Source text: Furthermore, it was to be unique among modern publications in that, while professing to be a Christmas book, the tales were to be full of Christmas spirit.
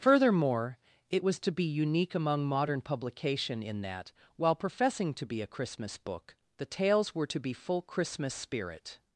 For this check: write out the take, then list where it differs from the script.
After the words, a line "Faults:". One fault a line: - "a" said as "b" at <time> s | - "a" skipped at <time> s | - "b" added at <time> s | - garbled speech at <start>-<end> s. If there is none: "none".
Furthermore, it was to be unique among modern publication in that, while professing to be a Christmas book, the tales were to be full Christmas spirit.
Faults:
- "publications" said as "publication" at 2.8 s
- "of" skipped at 7.8 s